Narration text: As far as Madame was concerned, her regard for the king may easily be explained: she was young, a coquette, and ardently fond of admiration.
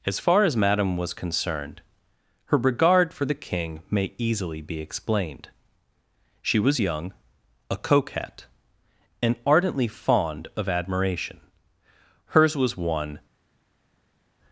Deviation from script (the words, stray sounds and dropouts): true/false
true